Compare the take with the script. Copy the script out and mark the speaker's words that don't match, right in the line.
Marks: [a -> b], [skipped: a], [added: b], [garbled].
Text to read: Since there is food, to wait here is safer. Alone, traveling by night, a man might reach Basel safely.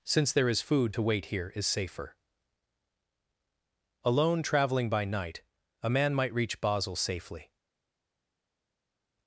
Since there is food, to wait here is safer. Alone, traveling by night, a man might reach Basel safely.